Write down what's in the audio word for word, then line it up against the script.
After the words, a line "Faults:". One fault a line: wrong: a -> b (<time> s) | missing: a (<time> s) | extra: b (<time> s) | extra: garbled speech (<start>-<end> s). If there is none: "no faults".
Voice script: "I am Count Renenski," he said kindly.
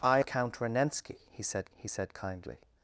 "I Count Renenski," he said he said kindly.
Faults:
missing: am (0.2 s)
extra: he said (1.8 s)